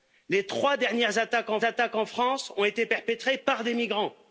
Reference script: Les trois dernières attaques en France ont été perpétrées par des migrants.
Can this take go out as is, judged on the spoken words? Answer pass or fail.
fail